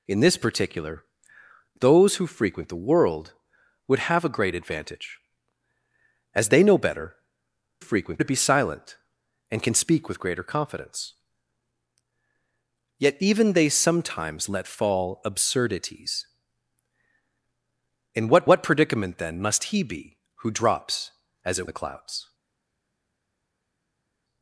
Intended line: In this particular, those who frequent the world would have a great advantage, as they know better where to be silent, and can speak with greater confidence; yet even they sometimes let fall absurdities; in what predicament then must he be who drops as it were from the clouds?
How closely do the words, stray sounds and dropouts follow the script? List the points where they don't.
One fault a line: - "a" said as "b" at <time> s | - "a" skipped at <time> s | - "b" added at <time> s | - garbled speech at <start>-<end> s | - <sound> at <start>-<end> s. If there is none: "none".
- "where" said as "frequent" at 7.8 s
- "what" added at 18.4 s
- "were from" skipped at 21.7 s